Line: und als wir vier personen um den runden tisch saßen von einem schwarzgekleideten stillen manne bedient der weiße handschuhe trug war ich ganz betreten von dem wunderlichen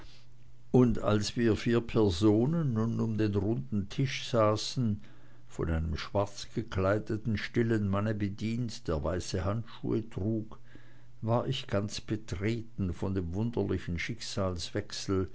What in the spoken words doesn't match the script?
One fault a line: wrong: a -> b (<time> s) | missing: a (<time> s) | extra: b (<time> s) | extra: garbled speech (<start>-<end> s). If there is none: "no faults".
extra: nun (2.7 s)